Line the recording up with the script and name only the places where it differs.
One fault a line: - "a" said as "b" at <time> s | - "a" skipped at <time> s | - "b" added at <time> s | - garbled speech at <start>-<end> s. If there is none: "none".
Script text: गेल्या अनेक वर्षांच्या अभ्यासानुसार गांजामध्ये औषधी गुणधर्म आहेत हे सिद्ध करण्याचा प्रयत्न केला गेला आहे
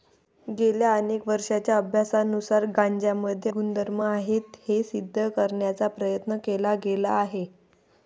- "औषधी" skipped at 3.5 s